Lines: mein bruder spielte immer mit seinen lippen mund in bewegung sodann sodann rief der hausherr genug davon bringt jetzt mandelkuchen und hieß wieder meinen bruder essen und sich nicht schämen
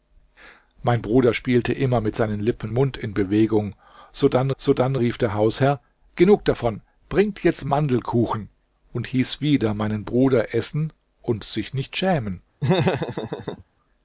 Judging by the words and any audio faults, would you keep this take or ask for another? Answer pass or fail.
fail